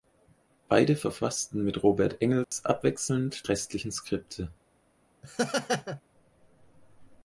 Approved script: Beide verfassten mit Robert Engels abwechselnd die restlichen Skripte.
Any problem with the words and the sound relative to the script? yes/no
yes